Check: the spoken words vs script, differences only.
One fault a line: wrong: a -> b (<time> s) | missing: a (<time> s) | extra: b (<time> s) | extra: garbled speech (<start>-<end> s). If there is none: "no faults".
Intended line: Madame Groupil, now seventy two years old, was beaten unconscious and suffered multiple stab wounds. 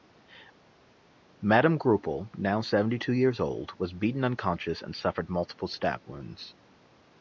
no faults